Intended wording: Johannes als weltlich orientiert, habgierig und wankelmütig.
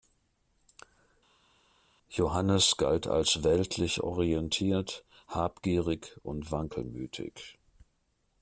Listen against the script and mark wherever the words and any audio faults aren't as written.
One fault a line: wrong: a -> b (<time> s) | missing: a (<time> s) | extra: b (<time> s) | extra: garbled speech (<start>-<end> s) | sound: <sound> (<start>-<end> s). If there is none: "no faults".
extra: galt (2.8 s)